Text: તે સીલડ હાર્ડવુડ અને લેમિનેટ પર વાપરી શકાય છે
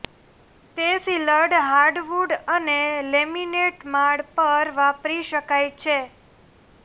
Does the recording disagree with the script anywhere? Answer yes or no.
yes